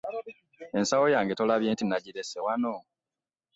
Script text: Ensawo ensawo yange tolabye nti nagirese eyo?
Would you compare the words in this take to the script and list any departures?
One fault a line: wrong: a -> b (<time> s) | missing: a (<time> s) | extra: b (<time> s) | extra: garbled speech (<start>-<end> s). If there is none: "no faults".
missing: ensawo (1.1 s)
wrong: eyo -> wano (2.4 s)